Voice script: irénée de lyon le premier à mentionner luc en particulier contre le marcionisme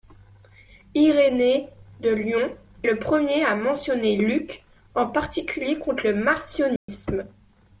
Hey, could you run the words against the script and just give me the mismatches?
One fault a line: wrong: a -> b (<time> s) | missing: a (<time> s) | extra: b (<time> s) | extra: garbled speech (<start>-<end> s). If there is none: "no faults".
no faults